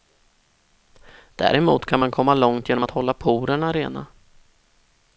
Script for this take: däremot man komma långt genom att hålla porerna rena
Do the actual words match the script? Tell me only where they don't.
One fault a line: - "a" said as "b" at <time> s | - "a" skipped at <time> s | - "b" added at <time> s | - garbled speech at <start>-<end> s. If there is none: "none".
- "kan" added at 1.9 s